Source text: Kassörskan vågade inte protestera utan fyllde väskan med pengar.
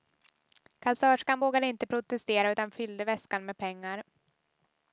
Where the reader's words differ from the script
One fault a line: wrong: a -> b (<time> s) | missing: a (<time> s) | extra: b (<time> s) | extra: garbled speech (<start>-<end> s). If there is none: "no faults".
no faults